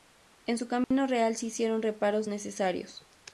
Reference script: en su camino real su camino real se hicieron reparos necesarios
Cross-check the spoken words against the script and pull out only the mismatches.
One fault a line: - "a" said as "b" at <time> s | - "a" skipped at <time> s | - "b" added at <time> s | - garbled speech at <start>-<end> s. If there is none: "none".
- "su camino real" skipped at 1.4 s